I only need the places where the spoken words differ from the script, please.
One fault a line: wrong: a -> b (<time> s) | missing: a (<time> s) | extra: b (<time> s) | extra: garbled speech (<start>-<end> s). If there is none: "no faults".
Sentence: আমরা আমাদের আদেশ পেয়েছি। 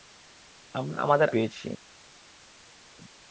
missing: আদেশ (1.3 s)